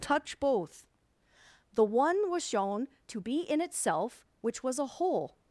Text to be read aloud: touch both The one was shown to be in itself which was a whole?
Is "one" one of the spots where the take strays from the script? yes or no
no